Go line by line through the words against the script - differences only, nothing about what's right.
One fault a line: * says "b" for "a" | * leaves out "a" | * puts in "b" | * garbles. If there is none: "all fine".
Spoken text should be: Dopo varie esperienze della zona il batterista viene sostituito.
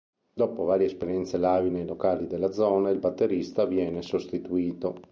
* puts in "live nei locali"